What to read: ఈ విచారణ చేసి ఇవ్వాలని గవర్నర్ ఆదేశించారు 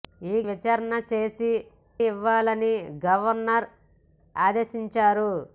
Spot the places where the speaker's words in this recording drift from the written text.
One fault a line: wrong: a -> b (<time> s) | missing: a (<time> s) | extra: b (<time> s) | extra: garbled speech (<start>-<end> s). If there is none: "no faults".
no faults